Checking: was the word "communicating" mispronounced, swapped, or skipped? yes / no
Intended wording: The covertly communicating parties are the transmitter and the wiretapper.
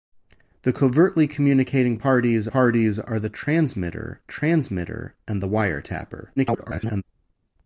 no